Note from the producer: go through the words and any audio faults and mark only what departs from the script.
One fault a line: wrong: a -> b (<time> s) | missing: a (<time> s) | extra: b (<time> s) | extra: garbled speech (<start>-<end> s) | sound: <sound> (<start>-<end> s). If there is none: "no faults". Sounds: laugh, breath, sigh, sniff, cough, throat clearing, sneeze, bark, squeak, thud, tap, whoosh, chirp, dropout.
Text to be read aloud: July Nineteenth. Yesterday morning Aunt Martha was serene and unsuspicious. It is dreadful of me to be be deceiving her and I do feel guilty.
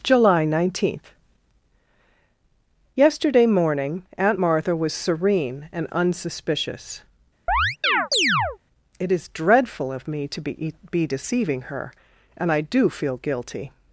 sound: chirp (7.5-8.6 s)